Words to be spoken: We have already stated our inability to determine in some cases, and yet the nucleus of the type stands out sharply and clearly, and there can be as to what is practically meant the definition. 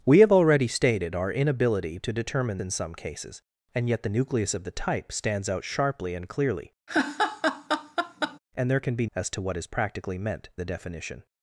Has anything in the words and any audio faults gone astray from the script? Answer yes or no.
yes